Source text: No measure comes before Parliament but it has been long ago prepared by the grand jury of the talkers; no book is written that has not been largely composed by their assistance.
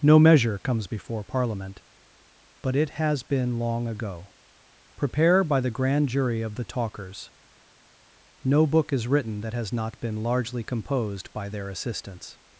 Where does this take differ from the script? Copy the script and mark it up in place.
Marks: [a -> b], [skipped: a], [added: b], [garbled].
No measure comes before Parliament but it has been long ago [prepared -> prepare] by the grand jury of the talkers; no book is written that has not been largely composed by their assistance.